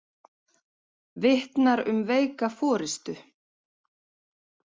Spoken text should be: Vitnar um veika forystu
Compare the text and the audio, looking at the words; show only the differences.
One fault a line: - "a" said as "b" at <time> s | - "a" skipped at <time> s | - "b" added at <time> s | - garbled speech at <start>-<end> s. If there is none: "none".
none